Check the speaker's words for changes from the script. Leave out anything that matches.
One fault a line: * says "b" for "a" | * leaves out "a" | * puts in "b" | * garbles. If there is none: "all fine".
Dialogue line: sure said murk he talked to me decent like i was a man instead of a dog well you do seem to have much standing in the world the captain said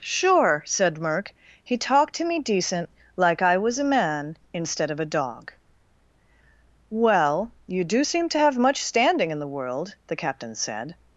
all fine